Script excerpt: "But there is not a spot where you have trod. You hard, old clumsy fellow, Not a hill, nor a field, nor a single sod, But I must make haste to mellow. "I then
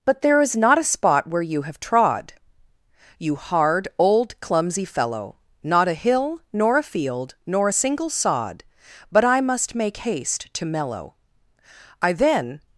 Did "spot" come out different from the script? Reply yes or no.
no